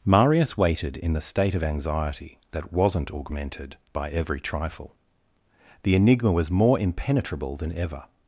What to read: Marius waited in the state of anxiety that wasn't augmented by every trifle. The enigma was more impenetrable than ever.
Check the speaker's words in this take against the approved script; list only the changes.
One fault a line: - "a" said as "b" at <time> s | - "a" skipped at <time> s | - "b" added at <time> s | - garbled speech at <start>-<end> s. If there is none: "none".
none